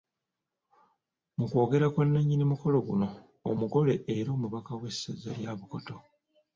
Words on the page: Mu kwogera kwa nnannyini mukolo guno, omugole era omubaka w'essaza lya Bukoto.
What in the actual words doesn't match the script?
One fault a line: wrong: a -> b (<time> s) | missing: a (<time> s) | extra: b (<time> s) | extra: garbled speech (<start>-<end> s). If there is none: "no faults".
no faults